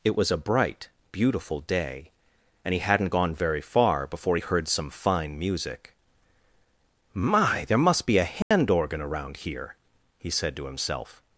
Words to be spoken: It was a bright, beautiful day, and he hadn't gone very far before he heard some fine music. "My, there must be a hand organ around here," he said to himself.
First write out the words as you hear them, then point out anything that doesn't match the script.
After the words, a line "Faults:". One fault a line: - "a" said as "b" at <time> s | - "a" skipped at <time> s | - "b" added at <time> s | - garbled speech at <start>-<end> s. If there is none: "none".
It was a bright, beautiful day, and he hadn't gone very far before he heard some fine music. "My, there must be a hand organ around here," he said to himself.
Faults:
none